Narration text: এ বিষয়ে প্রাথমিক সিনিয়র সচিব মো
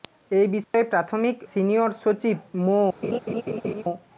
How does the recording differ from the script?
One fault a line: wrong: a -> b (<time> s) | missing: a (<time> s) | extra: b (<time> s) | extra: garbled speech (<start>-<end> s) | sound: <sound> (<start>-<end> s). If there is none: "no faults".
sound: dropout (0.6-0.7 s)
sound: laugh (3.0-3.8 s)